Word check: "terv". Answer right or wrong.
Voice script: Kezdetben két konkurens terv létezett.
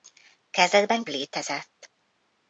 wrong